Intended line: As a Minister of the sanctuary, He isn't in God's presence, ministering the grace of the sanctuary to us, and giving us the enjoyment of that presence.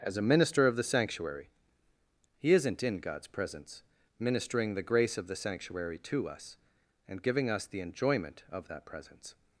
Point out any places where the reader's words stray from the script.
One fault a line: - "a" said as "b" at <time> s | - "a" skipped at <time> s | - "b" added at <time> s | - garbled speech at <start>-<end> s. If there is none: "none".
none